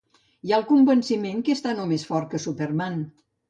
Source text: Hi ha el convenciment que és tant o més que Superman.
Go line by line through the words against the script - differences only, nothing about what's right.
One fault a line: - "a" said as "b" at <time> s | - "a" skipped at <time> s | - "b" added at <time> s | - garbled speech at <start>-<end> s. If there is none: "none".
- "fort" added at 2.1 s